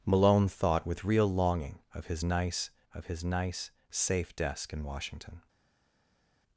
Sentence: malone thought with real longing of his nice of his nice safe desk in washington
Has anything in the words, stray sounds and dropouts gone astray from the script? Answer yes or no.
no